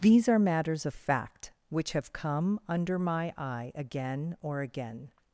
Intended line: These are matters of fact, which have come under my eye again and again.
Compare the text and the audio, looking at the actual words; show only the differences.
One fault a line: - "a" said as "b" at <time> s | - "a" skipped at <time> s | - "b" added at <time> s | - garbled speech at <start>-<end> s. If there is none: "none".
- "and" said as "or" at 4.4 s